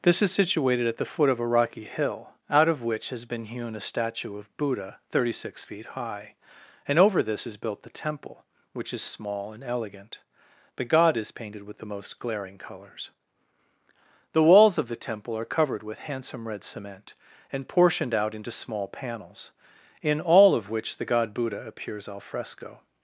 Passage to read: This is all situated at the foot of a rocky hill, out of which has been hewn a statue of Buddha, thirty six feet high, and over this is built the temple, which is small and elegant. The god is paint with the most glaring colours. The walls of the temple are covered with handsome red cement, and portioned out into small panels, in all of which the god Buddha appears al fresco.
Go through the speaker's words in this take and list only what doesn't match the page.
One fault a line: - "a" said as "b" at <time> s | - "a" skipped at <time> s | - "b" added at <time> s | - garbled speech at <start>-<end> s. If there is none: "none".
- "all" skipped at 0.3 s
- "paint" said as "painted" at 11.3 s